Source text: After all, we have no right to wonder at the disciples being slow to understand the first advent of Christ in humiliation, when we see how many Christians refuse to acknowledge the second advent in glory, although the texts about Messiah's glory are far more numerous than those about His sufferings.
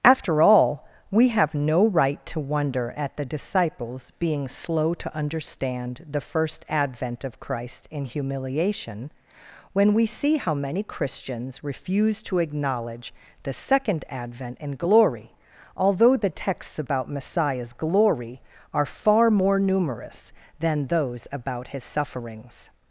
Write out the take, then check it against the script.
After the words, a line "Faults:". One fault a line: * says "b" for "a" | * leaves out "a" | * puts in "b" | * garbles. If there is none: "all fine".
After all, we have no right to wonder at the disciples being slow to understand the first advent of Christ in humiliation, when we see how many Christians refuse to acknowledge the second advent in glory, although the texts about Messiah's glory are far more numerous than those about His sufferings.
Faults:
all fine